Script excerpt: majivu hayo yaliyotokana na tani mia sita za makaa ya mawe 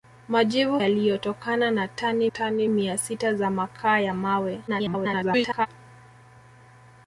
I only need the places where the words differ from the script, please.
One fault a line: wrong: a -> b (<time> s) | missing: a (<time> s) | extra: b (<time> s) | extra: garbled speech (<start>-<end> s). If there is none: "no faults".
missing: hayo (0.8 s)
extra: tani (2.2 s)
extra: garbled speech (4.7-5.7 s)